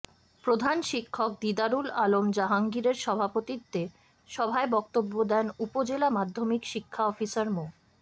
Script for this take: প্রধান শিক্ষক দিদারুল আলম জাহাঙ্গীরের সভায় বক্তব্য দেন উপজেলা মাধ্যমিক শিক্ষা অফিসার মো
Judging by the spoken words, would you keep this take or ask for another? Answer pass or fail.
fail